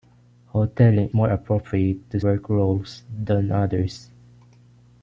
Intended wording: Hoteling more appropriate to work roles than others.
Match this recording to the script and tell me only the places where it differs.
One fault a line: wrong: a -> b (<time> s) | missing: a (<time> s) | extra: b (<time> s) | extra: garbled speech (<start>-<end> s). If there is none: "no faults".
no faults